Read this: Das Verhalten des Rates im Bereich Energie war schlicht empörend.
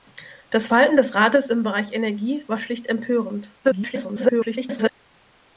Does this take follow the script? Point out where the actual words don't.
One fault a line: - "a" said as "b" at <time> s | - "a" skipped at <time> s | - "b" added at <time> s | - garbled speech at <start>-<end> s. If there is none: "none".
- garbled speech at 3.6-4.9 s